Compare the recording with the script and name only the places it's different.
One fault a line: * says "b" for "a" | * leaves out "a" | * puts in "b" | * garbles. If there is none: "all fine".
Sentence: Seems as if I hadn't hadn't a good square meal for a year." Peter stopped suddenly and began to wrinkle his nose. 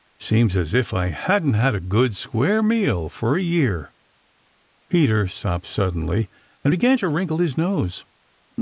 * says "had" for "hadn't"